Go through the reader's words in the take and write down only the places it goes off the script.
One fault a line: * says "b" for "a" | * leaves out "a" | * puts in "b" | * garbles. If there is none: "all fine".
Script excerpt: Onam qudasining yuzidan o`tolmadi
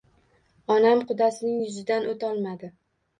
all fine